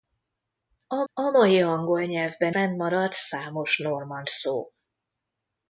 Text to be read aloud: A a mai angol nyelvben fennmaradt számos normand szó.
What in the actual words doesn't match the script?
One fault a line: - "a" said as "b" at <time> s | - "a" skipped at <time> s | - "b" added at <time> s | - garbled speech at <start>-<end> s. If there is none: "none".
none